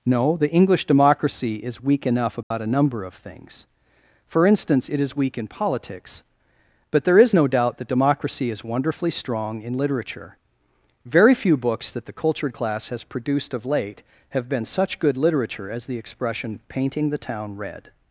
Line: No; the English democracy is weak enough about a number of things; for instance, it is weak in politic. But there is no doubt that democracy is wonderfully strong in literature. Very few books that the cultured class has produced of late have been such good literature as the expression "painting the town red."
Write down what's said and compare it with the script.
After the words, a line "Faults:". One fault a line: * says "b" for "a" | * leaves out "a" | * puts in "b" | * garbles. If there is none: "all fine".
No; the English democracy is weak enough about a number of things; for instance, it is weak in politics. But there is no doubt that democracy is wonderfully strong in literature. Very few books that the cultured class has produced of late have been such good literature as the expression "painting the town red."
Faults:
* says "politics" for "politic"